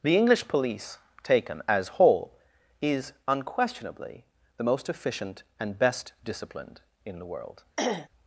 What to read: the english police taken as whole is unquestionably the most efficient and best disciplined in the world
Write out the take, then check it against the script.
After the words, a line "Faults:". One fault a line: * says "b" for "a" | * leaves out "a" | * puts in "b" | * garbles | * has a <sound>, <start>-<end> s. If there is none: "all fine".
the english police taken as whole is unquestionably the most efficient and best disciplined in the world
Faults:
* has a throat clearing, 7.8-8.1 s